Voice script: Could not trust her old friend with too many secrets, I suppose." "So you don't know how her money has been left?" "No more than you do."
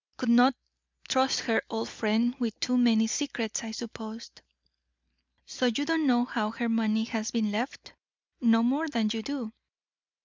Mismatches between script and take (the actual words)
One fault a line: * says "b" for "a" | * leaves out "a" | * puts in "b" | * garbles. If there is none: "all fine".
all fine